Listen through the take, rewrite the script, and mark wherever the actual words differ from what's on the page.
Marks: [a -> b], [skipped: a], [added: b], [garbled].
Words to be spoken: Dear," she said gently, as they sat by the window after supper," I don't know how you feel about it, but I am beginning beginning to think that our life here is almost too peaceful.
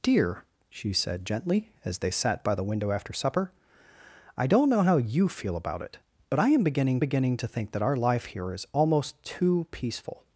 Dear," she said gently, as they sat by the window after supper," I don't know how you feel about it, but I am beginning beginning to think that our life here is almost too peaceful.